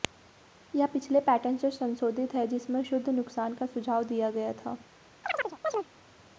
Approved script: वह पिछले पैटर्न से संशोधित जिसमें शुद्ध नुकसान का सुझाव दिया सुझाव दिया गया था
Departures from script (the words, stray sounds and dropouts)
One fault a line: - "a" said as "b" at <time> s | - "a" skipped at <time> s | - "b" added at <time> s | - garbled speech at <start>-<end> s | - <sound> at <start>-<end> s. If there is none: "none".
- "वह" said as "यह" at 0.7 s
- "है" added at 2.4 s
- "सुझाव दिया" skipped at 4.3 s
- chirp at 5.2-5.9 s